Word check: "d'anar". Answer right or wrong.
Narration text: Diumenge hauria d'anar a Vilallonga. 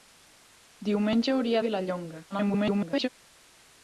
wrong